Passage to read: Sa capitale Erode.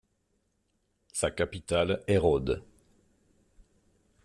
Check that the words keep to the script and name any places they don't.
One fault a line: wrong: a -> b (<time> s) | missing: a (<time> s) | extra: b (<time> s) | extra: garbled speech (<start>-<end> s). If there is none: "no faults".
no faults